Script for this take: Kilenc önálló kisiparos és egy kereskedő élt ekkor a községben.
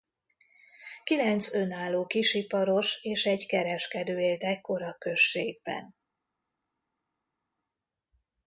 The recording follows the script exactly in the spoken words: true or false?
true